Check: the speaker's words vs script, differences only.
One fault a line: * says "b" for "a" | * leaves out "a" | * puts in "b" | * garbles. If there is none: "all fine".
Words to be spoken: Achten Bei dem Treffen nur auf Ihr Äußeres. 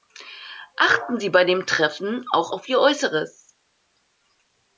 * puts in "Sie"
* says "auch" for "nur"